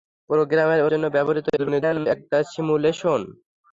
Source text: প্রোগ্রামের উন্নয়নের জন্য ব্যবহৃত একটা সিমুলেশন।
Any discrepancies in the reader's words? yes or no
yes